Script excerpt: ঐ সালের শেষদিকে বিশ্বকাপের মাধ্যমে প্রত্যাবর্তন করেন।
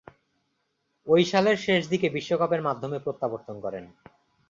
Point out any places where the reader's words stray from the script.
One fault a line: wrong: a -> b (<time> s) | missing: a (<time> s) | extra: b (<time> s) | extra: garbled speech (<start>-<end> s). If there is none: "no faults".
no faults